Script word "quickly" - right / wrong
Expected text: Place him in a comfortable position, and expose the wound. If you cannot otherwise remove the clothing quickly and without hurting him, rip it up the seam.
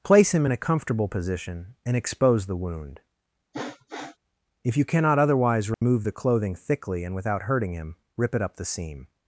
wrong